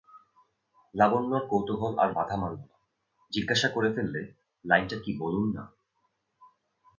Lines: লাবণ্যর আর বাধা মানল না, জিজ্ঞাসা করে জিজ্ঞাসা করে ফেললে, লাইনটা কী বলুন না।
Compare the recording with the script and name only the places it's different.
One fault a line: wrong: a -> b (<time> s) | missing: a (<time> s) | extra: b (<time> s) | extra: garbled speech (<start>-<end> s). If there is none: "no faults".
extra: কৌতূহল (1.5 s)
missing: জিজ্ঞাসা করে (3.9 s)